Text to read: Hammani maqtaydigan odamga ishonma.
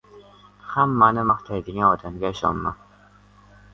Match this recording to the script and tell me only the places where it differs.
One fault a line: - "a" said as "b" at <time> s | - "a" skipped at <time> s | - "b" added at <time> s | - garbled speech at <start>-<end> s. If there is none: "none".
none